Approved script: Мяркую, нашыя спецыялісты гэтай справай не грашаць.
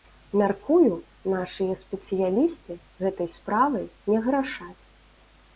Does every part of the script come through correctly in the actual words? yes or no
yes